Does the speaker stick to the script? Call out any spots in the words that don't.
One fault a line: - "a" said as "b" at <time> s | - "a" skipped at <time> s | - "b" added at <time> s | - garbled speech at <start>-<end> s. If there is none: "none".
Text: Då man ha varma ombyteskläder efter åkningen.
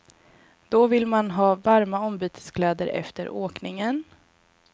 - "vill" added at 0.9 s